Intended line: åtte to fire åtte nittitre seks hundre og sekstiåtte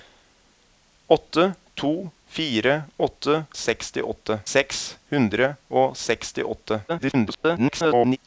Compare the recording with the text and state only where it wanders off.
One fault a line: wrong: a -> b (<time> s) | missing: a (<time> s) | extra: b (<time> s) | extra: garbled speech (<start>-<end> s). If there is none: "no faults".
wrong: nittitre -> sekstiåtte (3.6 s)
extra: garbled speech (6.9-8.2 s)